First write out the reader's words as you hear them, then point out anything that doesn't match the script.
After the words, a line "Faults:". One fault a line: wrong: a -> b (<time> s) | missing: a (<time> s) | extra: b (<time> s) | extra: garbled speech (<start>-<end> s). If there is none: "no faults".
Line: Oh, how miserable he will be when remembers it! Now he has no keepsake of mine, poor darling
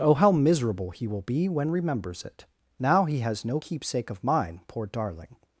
Oh, how miserable he will be when remembers it! Now he has no keepsake of mine, poor darling
Faults:
no faults